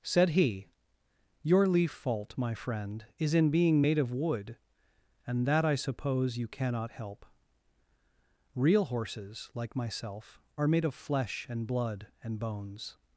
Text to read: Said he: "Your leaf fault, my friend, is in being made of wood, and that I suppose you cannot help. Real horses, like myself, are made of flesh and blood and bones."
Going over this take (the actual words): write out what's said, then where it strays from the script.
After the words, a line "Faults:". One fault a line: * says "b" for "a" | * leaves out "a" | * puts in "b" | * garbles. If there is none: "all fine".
Said he: "Your leaf fault, my friend, is in being made of wood, and that I suppose you cannot help. Real horses, like myself, are made of flesh and blood and bones."
Faults:
all fine